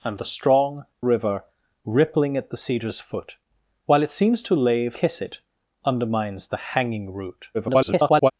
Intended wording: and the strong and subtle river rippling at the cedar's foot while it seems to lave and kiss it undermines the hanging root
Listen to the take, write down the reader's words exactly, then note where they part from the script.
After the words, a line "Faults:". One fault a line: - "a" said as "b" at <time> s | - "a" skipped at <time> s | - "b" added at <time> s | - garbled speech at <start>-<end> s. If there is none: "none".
and the strong river rippling at the cedar's foot while it seems to lave kiss it undermines the hanging root [garbled]
Faults:
- "and subtle" skipped at 0.8 s
- "and" skipped at 5.0 s
- garbled speech at 7.5-8.3 s